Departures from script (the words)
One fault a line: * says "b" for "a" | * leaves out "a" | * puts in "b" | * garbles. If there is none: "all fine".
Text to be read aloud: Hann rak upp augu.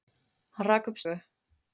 all fine